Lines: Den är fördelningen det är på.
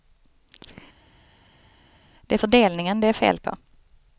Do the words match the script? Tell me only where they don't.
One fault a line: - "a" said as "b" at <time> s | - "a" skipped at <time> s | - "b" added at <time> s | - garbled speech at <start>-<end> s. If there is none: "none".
- "Den" said as "Det" at 2.2 s
- "fel" added at 3.1 s